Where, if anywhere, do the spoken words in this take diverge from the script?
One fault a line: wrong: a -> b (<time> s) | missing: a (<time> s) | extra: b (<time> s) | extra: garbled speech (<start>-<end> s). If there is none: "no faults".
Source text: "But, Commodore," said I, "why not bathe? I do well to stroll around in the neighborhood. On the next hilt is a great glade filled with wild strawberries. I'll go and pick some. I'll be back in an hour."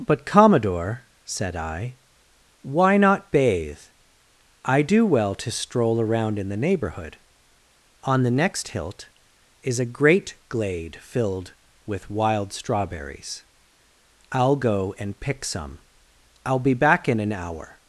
no faults